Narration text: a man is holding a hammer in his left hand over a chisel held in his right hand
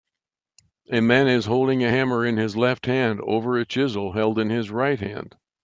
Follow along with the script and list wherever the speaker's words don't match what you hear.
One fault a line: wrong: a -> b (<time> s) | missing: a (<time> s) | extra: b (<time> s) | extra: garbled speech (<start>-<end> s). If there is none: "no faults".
no faults